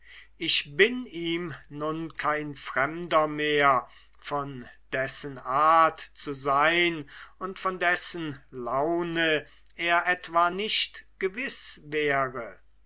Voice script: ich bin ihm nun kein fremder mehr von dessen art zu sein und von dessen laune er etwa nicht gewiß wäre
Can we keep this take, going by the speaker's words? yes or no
yes